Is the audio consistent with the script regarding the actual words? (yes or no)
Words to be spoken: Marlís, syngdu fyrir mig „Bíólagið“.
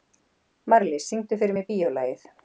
yes